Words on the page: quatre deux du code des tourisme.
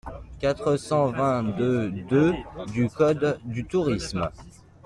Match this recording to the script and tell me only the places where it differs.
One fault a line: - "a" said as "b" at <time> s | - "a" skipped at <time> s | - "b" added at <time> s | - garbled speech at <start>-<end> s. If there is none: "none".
- "cent vingt" added at 0.8 s
- "deux" added at 2.1 s
- "des" said as "du" at 3.4 s